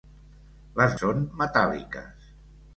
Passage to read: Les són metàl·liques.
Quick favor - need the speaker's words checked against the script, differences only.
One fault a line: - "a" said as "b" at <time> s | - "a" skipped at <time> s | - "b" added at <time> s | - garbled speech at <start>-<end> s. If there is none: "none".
none